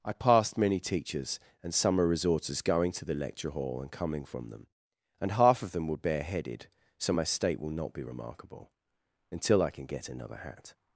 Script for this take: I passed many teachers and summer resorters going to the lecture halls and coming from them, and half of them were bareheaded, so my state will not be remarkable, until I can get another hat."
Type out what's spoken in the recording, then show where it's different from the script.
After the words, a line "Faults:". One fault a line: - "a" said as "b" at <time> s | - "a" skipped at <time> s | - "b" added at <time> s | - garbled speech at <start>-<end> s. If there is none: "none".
I passed many teachers and summer resorters going to the lecture hall and coming from them, and half of them were bareheaded, so my state will not be remarkable, until I can get another hat."
Faults:
- "halls" said as "hall" at 3.5 s